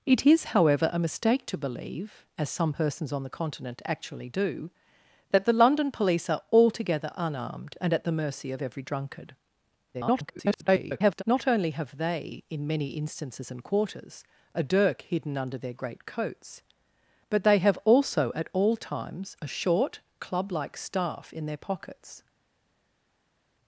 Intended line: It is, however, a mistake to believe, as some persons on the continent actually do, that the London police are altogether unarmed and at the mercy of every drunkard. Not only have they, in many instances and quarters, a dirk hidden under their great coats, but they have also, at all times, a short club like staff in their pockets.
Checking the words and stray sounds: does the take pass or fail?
fail